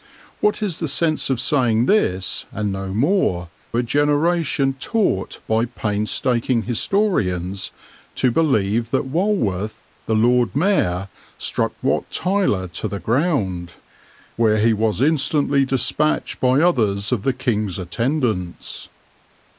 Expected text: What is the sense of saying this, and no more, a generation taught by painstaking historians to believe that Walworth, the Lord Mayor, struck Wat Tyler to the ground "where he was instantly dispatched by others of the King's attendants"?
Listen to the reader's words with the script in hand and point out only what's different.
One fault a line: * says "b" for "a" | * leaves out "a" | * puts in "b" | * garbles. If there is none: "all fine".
all fine